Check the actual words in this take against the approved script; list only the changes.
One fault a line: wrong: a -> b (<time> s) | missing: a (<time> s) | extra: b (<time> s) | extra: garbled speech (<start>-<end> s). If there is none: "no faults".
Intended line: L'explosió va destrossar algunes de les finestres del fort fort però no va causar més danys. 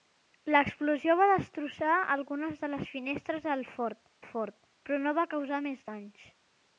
no faults